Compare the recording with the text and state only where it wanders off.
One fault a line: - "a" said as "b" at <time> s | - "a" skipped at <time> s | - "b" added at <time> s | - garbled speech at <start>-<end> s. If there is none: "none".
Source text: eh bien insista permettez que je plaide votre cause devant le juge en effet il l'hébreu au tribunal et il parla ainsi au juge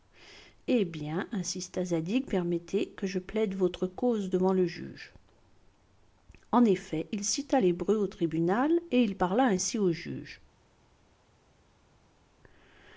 - "zadig" added at 1.9 s
- "cita" added at 7.2 s